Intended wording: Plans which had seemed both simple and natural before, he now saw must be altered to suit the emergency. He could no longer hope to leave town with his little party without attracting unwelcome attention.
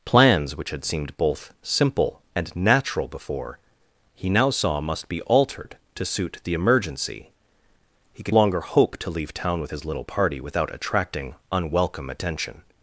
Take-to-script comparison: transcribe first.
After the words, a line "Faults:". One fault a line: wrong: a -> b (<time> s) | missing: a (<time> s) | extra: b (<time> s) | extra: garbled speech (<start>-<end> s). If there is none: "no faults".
Plans which had seemed both simple and natural before, he now saw must be altered to suit the emergency. He could longer hope to leave town with his little party without attracting unwelcome attention.
Faults:
missing: no (8.3 s)